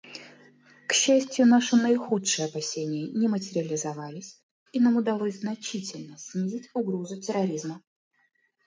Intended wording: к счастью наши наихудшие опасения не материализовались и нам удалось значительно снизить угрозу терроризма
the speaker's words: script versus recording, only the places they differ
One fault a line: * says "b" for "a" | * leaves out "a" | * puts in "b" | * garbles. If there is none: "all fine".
all fine